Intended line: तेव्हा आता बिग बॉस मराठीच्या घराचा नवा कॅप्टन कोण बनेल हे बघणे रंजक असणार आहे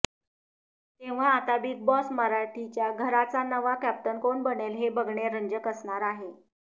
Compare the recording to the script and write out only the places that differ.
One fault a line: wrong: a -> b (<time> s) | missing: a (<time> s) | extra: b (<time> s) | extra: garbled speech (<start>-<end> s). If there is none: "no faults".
no faults